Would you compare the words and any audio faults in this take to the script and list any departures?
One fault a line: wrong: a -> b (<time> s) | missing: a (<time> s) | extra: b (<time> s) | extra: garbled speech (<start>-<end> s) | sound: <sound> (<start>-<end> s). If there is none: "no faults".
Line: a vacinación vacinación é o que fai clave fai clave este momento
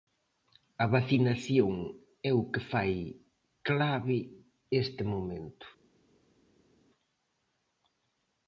missing: vacinación (1.7 s)
missing: fai clave (4.2 s)